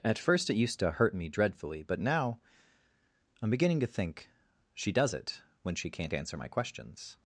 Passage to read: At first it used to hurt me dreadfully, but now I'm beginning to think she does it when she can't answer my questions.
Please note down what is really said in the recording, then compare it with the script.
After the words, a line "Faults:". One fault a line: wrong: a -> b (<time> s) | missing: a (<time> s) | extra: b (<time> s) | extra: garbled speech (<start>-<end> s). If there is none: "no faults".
At first it used to hurt me dreadfully, but now I'm beginning to think she does it when she can't answer my questions.
Faults:
no faults